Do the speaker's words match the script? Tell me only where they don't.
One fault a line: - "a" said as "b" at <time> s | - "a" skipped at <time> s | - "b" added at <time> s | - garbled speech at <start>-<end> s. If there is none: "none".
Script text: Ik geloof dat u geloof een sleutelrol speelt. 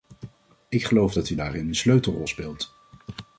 - "geloof" said as "daarin" at 1.3 s